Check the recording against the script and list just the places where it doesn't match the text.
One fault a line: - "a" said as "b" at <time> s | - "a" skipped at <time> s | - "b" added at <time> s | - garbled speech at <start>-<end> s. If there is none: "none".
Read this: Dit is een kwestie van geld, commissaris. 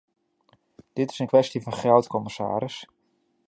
none